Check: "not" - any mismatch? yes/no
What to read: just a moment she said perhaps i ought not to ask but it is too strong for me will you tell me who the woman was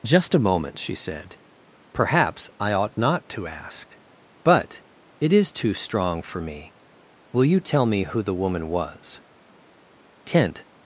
no